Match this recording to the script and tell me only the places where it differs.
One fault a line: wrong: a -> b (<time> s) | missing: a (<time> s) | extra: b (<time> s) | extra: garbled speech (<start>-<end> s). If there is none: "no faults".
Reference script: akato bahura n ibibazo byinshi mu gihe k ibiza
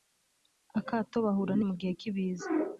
missing: ibibazo byinshi (1.6 s)